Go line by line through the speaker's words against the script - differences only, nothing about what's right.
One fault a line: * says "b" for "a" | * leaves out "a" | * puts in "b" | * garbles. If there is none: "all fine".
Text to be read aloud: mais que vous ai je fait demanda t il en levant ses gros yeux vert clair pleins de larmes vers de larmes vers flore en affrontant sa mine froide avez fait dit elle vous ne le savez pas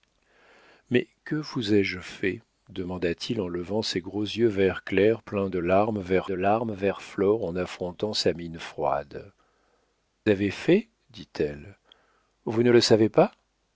all fine